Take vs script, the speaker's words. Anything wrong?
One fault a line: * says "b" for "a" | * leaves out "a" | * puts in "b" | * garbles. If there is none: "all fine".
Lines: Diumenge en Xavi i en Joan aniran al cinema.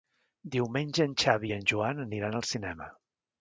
all fine